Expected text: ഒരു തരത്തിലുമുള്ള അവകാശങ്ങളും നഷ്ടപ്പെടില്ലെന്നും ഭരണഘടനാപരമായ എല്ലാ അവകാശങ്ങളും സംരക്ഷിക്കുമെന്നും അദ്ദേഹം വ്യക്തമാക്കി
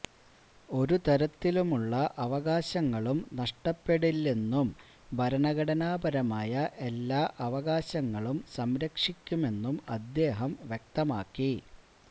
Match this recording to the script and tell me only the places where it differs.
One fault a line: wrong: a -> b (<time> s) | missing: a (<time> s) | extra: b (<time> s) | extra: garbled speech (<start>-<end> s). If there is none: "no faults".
no faults